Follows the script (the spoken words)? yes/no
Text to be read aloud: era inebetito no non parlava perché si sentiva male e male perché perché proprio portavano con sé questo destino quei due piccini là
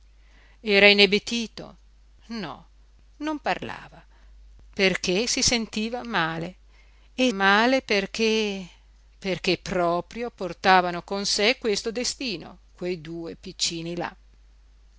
yes